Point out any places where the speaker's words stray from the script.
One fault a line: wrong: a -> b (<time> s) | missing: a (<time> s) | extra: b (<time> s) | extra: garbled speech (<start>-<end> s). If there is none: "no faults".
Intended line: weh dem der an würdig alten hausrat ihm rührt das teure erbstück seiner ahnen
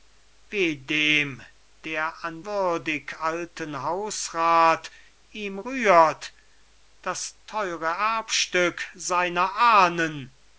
no faults